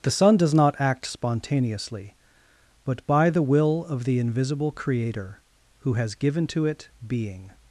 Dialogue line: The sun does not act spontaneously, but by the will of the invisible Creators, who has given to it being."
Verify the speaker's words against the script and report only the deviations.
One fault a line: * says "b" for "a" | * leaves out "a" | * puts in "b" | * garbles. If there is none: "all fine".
* says "Creator" for "Creators"